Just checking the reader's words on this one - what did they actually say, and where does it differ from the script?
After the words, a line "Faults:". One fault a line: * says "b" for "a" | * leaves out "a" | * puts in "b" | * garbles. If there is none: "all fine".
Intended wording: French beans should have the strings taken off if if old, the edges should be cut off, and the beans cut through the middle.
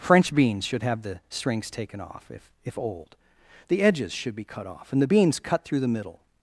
French beans should have the strings taken off if if old, the edges should be cut off, and the beans cut through the middle.
Faults:
all fine